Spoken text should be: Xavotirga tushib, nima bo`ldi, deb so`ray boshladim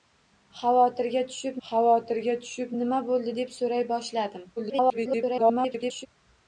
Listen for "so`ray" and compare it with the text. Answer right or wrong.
right